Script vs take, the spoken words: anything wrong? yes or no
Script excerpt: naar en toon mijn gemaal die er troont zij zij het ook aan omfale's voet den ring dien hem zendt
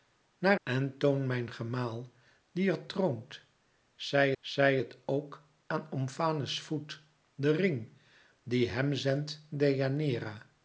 no